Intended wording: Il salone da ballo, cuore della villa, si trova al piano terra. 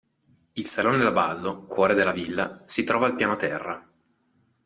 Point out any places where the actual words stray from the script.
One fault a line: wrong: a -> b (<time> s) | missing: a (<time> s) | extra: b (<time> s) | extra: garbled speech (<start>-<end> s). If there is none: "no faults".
no faults